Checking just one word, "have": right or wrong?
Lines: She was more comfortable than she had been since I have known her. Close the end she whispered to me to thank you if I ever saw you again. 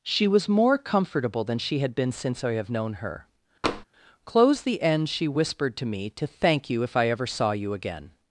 right